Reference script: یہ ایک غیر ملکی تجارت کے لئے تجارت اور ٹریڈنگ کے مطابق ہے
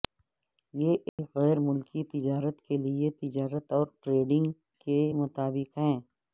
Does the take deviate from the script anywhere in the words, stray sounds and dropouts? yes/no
yes